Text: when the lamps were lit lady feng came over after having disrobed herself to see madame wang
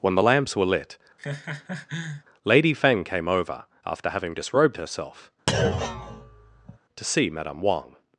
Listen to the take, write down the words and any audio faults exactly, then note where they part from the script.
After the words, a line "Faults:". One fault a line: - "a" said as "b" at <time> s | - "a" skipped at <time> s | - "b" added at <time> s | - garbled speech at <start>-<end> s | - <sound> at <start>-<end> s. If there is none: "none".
when the lamps were lit lady feng came over after having disrobed herself to see madame wang
Faults:
- laugh at 1.2-2.2 s
- thud at 5.5-6.8 s